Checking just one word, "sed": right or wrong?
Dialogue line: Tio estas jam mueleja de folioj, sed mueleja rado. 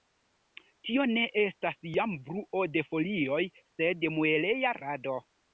right